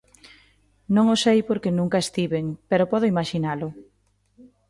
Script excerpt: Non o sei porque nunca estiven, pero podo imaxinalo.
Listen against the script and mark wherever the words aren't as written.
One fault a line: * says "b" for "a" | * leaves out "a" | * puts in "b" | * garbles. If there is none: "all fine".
all fine